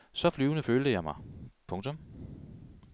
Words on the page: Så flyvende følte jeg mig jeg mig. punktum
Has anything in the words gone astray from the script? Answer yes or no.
yes